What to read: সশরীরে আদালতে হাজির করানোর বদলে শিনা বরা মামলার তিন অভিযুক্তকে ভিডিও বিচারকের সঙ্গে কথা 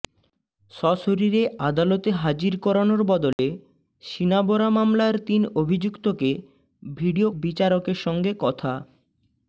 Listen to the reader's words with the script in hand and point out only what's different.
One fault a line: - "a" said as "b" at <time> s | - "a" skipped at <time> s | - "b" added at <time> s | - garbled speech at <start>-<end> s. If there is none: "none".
none